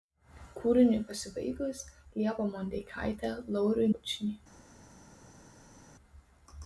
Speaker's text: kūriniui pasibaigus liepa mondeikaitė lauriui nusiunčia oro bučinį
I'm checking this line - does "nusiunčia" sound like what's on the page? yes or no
no